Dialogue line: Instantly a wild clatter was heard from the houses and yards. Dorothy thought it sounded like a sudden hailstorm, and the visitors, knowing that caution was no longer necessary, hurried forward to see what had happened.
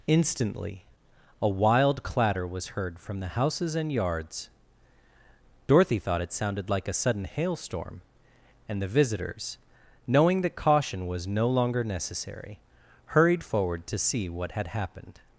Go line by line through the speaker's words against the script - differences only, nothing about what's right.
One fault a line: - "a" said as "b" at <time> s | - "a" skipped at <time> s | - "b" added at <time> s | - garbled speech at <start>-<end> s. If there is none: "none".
none